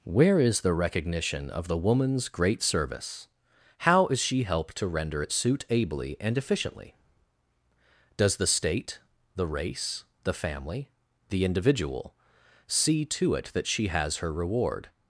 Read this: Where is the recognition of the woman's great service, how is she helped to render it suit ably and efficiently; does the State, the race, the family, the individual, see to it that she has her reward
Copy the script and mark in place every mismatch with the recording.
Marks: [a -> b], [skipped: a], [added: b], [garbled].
Where is the recognition of the woman's great service, how is she helped to render it suit ably and efficiently; does the State, the race, the family, the individual, see to it that she has her reward